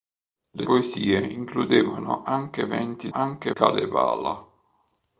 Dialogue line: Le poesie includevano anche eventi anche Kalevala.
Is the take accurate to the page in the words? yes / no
yes